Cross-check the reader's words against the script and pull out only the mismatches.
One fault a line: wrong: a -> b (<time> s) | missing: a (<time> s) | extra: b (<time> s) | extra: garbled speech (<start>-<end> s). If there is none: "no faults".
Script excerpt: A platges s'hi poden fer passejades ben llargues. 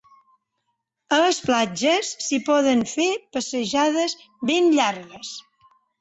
extra: les (1.2 s)